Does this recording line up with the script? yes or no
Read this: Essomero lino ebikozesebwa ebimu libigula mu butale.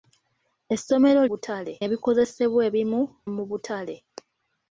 no